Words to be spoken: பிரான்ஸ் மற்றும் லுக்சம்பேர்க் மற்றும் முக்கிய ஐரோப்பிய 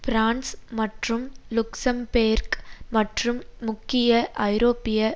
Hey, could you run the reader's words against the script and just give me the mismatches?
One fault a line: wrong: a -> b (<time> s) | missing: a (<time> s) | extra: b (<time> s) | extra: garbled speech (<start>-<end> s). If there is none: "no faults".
no faults